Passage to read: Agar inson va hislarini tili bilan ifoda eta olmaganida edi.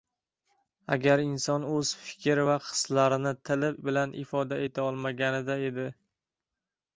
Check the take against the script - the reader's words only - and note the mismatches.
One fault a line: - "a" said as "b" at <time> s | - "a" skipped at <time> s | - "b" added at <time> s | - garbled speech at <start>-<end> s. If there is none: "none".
- "o‘z fikr" added at 1.7 s